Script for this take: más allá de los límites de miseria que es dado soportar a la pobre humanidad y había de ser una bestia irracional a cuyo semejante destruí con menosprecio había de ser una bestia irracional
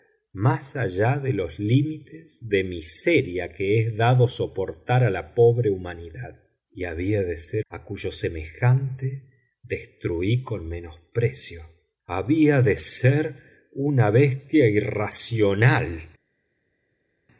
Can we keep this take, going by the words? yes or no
no